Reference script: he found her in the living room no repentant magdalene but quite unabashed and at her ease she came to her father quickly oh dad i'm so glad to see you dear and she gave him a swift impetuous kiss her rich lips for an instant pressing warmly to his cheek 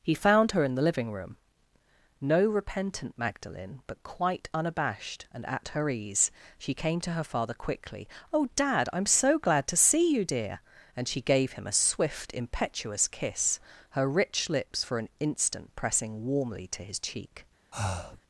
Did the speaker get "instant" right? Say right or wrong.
right